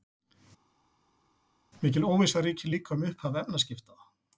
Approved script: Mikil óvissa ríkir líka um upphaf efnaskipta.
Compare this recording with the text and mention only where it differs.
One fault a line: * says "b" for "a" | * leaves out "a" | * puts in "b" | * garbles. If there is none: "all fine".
all fine